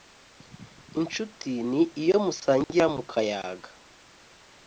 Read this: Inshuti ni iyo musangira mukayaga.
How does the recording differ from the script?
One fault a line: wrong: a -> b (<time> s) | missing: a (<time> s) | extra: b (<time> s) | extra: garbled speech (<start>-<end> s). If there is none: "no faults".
no faults